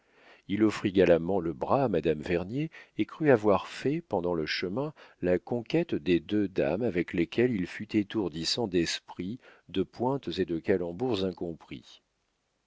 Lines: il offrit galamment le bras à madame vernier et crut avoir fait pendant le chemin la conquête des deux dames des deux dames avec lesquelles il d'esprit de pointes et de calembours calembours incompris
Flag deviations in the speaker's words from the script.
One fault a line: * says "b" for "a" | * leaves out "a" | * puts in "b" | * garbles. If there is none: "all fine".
* leaves out "des deux dames"
* puts in "fut étourdissant"
* leaves out "calembours"